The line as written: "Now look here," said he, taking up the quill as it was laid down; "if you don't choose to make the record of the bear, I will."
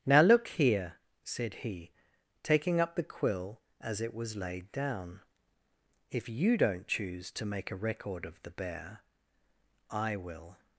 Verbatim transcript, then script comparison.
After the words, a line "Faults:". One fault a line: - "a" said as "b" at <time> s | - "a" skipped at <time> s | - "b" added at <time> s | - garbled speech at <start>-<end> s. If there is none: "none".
"Now look here," said he, taking up the quill as it was laid down; "if you don't choose to make a record of the bear, I will."
Faults:
- "the" said as "a" at 7.7 s